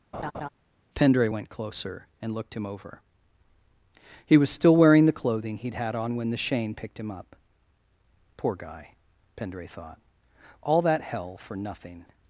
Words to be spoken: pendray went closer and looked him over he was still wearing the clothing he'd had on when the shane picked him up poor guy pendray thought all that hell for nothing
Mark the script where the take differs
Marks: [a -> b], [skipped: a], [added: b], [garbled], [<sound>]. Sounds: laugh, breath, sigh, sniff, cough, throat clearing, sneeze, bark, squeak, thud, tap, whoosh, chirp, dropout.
[laugh] pendray went closer and looked him over he was still wearing the clothing he'd had on when the shane picked him up poor guy pendray thought all that hell for nothing